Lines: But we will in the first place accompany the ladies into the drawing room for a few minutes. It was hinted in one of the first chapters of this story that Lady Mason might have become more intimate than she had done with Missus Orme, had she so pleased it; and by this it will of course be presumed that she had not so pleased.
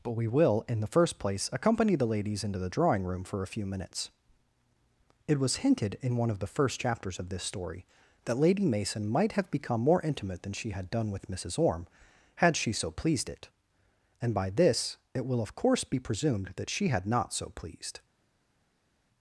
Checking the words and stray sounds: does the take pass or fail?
pass